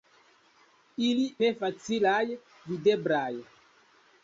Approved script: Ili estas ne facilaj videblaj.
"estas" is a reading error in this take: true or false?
true